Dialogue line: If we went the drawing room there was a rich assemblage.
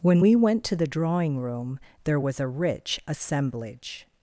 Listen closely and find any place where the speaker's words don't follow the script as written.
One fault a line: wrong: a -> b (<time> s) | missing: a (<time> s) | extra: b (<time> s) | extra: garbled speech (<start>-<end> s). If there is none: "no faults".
wrong: If -> When (0.0 s)
extra: to (0.6 s)